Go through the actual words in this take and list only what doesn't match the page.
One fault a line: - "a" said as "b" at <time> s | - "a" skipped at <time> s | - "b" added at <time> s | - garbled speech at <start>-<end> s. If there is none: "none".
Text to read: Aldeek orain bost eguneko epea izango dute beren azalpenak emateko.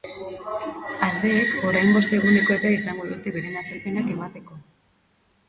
none